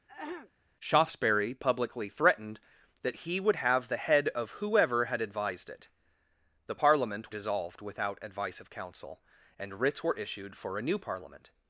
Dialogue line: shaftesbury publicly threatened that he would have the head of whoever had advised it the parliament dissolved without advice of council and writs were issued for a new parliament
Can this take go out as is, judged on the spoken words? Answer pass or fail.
pass